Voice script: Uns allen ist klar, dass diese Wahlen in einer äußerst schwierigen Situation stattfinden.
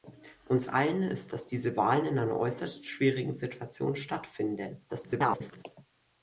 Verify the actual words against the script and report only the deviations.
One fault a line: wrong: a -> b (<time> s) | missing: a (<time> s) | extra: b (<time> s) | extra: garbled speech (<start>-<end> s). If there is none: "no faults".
missing: klar (1.4 s)
extra: garbled speech (4.9-5.6 s)